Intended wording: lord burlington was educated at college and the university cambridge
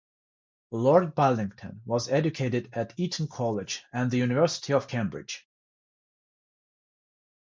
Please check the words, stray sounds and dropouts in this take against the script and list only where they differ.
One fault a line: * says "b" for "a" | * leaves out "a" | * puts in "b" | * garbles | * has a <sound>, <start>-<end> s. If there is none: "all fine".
* puts in "eton"
* puts in "of"